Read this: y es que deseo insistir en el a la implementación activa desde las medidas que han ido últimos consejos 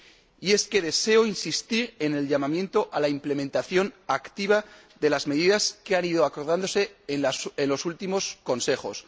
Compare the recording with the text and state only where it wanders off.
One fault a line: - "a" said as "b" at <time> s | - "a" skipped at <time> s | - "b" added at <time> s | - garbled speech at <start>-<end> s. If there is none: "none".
- "llamamiento" added at 2.3 s
- "desde" said as "de" at 5.0 s
- "acordándose en los" added at 6.2 s